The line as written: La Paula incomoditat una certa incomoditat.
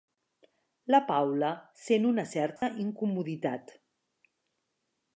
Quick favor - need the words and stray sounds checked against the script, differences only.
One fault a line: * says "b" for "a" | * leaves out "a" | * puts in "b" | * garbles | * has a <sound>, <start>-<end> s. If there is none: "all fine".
* says "sent" for "incomoditat"
* has a dropout, 2.6-2.6 s